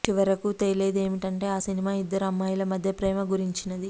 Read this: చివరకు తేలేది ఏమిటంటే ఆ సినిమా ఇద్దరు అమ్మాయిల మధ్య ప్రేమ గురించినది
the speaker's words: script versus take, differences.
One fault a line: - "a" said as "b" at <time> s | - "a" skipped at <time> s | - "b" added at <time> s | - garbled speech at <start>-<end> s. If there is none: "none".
none